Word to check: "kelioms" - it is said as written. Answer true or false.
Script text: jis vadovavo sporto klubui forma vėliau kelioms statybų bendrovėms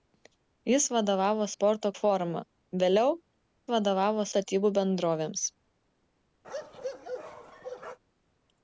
false